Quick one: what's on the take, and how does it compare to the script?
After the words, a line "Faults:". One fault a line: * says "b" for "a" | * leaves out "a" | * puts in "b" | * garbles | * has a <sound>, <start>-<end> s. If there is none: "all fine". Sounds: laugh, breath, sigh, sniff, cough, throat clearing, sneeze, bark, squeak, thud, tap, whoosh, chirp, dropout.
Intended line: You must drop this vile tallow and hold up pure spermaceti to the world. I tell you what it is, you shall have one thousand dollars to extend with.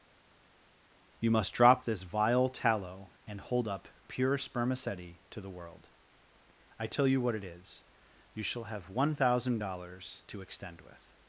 You must drop this vile tallow and hold up pure spermaceti to the world. I tell you what it is, you shall have one thousand dollars to extend with.
Faults:
all fine